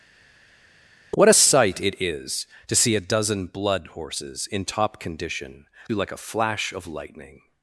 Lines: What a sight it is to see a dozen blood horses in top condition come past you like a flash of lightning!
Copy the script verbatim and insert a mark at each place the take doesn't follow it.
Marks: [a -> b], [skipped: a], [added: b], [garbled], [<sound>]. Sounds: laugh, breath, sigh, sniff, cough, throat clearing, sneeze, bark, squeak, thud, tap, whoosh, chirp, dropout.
What a sight it is to see a dozen blood horses in top condition [skipped: come past] you like a flash of lightning!